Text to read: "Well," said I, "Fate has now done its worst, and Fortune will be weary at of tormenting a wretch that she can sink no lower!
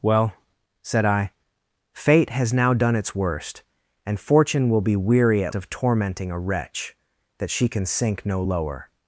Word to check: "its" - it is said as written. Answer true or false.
true